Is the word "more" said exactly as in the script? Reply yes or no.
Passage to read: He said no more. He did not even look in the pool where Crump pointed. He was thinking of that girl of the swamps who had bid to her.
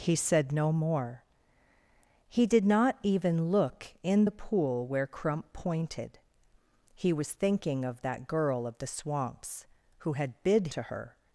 yes